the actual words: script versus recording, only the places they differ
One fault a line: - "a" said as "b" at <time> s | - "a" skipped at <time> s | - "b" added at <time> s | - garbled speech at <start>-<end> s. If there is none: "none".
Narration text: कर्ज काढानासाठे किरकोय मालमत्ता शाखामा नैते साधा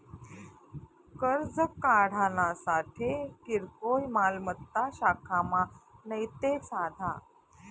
none